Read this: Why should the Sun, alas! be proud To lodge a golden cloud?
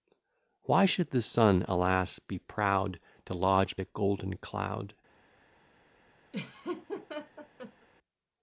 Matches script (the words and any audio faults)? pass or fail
fail